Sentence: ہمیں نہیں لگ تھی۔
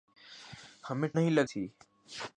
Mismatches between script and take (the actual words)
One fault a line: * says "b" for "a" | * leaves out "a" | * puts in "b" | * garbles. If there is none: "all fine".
all fine